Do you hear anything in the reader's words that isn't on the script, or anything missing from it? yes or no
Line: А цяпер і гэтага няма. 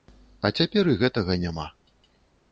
no